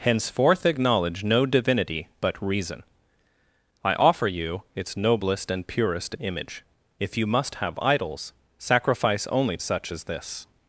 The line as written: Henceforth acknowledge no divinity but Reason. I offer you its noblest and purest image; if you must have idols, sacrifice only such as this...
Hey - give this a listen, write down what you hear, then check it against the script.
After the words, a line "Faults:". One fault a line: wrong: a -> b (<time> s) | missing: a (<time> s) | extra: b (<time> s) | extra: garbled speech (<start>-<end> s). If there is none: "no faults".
Henceforth acknowledge no divinity but Reason. I offer you its noblest and purest image; if you must have idols, sacrifice only such as this...
Faults:
no faults